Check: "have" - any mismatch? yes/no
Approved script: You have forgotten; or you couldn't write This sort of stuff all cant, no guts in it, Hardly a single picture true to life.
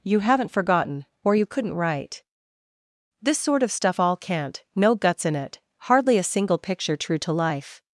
yes